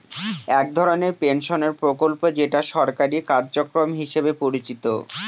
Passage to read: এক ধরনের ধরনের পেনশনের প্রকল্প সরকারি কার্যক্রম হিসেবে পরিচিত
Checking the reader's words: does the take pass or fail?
fail